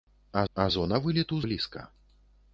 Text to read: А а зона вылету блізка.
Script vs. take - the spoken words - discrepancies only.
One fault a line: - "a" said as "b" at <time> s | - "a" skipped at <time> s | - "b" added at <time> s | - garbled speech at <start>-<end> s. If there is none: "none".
none